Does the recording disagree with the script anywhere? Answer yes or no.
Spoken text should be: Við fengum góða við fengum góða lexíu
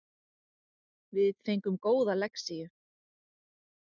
yes